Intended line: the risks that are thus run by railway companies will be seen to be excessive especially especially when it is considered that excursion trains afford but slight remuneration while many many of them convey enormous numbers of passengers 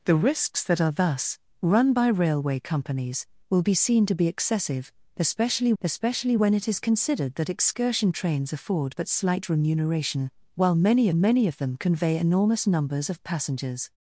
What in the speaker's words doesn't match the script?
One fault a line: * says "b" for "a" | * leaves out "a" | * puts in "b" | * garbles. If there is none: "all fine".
all fine